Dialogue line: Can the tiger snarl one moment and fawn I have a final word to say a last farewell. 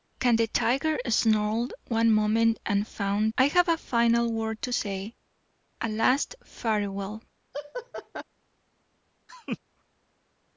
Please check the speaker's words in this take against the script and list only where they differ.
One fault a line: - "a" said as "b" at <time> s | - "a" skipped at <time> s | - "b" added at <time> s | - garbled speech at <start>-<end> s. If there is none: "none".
none